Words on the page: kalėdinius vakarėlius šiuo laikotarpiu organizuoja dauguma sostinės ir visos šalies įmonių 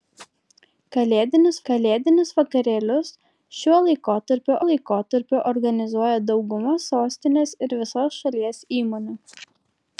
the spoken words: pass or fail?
fail